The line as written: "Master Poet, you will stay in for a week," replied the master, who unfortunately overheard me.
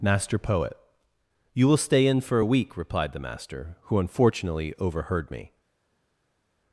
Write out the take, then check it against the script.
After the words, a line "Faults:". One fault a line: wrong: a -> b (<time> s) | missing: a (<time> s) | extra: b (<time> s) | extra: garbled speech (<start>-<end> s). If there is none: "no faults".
"Master Poet, you will stay in for a week," replied the master, who unfortunately overheard me.
Faults:
no faults